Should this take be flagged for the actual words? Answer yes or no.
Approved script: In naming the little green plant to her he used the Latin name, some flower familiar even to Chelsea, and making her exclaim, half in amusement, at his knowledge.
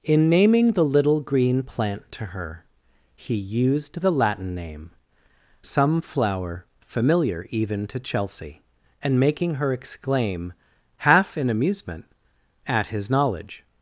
no